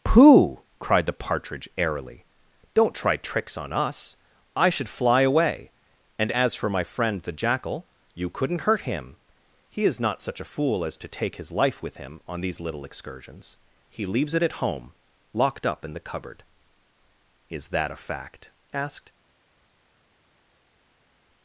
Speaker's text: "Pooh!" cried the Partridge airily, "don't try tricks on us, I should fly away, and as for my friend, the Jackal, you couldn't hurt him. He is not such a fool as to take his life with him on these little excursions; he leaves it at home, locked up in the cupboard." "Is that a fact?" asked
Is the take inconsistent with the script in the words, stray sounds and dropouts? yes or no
no